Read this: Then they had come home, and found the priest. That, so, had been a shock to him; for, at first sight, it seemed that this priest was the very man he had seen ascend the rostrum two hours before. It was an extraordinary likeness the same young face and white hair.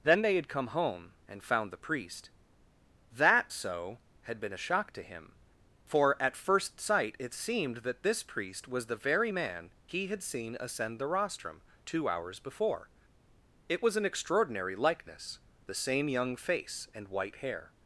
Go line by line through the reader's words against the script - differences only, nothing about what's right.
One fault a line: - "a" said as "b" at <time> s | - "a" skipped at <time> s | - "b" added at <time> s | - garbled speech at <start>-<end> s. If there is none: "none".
none